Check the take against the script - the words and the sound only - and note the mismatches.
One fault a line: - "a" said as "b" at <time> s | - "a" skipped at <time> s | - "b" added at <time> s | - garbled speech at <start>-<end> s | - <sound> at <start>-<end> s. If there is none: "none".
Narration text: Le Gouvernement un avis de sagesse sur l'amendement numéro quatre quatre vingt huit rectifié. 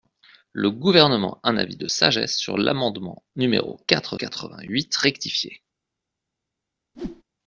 - whoosh at 6.9-7.2 s